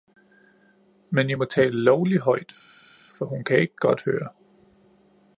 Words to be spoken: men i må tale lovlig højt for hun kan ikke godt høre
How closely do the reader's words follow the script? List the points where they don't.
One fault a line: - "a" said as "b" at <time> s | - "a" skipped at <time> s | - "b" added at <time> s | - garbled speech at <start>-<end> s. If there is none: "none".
none